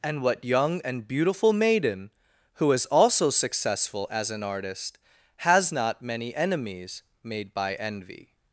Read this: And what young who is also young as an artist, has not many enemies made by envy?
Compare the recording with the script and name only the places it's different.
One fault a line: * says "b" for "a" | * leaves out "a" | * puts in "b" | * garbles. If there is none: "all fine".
* puts in "and beautiful maiden"
* says "successful" for "young"